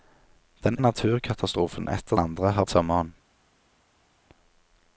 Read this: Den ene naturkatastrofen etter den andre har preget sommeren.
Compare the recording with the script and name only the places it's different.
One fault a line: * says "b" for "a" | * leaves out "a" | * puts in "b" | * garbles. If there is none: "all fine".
* leaves out "ene"
* leaves out "den"
* leaves out "preget"